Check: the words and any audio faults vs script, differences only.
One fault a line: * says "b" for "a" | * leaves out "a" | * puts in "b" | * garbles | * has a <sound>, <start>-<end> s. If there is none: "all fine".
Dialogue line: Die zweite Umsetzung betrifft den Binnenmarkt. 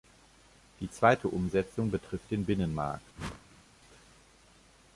* has a whoosh, 3.1-3.6 s